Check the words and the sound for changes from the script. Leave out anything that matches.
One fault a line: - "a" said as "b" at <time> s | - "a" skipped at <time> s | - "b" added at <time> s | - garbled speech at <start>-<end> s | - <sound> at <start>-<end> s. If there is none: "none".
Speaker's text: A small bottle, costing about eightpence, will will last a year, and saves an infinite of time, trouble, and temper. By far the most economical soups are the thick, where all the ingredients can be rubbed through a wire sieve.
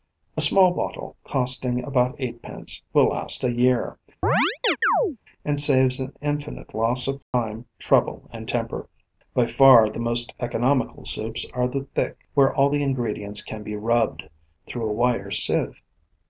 - "will" skipped at 3.1 s
- chirp at 4.2-5.2 s
- "loss" added at 6.7 s
- dropout at 7.2-7.3 s